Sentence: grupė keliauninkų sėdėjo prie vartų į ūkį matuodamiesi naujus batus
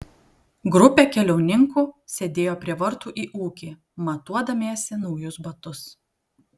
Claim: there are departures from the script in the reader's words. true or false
false